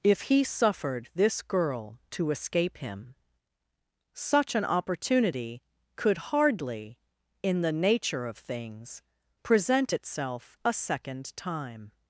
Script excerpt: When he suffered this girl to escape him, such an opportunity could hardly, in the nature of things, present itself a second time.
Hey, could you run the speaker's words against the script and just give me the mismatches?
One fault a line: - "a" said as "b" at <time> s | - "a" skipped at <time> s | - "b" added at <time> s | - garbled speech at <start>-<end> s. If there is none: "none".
- "When" said as "If" at 0.0 s